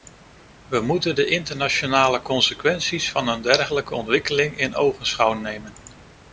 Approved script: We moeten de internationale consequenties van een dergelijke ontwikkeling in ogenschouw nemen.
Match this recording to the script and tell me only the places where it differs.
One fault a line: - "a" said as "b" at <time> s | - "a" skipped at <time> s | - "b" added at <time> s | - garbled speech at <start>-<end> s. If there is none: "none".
none